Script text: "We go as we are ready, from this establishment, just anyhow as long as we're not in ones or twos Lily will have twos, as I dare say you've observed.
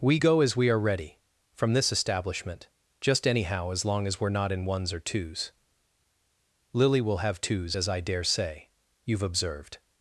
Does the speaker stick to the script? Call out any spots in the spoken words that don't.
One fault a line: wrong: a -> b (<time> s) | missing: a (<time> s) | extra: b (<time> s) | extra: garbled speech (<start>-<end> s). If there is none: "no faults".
no faults